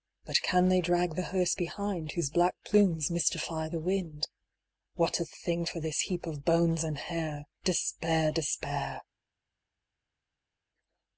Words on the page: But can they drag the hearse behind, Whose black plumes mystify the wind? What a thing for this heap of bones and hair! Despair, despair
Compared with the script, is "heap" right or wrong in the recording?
right